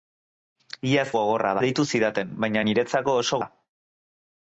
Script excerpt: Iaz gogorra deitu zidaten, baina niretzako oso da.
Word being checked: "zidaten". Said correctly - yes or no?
yes